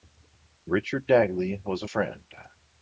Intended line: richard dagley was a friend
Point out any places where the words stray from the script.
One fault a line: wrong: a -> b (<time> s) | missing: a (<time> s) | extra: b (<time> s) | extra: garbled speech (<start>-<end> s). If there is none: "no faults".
no faults